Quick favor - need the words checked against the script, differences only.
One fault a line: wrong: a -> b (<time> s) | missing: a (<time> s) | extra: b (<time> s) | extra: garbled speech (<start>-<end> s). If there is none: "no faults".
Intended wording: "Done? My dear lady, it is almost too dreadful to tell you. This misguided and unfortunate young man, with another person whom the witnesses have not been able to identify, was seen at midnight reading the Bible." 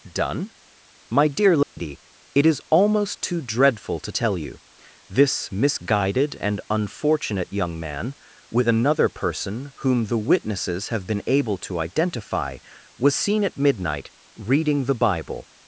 missing: not (11.1 s)